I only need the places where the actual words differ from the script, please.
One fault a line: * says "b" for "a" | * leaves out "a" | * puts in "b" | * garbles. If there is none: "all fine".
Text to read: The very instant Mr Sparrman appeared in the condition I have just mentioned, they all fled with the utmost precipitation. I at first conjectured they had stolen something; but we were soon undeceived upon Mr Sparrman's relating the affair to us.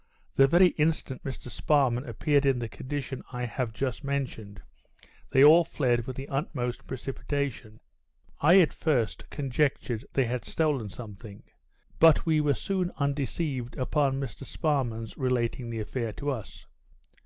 all fine